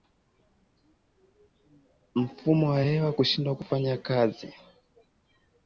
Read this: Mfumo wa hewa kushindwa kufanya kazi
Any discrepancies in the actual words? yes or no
no